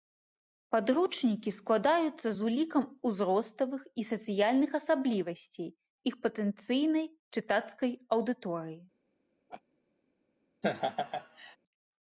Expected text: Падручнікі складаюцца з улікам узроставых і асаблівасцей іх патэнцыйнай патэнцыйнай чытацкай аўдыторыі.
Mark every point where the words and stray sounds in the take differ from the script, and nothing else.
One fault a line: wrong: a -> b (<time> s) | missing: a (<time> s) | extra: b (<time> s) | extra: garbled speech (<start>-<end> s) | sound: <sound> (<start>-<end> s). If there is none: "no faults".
extra: сацыяльных (4.1 s)
missing: патэнцыйнай (7.1 s)
sound: laugh (9.5-9.6 s)
sound: laugh (10.6-11.6 s)